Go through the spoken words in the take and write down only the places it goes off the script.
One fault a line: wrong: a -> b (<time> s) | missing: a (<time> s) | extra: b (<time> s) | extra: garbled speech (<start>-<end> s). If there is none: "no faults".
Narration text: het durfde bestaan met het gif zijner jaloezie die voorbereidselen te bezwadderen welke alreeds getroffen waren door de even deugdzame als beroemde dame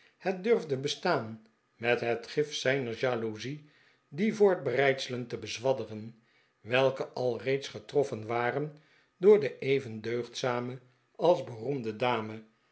no faults